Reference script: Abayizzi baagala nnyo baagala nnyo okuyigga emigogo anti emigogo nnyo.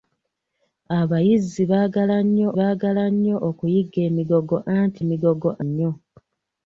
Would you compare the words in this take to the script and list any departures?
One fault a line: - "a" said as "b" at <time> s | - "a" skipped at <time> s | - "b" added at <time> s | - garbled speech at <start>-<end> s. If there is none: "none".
none